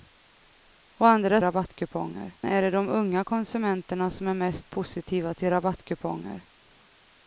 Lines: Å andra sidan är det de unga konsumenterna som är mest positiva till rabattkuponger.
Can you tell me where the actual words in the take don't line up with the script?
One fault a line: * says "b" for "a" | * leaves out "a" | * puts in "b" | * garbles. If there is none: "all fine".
* says "rabattkuponger" for "sidan"